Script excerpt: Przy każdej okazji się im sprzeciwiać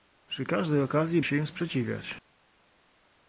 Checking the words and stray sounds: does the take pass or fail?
pass